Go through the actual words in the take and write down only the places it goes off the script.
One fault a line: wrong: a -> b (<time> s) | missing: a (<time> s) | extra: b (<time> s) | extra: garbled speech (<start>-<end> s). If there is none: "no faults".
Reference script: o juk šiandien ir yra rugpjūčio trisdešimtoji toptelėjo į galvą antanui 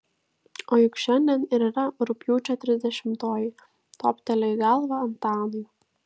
no faults